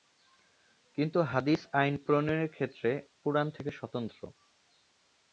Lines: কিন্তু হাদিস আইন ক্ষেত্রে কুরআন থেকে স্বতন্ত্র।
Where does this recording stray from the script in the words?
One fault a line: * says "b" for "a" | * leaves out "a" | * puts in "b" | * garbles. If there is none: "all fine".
* puts in "প্রণয়নের"